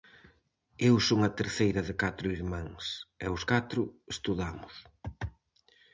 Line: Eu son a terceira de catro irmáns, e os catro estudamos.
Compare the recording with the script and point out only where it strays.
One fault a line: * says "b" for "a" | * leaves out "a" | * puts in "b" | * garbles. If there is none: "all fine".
all fine